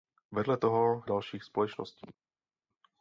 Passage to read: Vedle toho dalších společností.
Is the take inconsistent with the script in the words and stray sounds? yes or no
no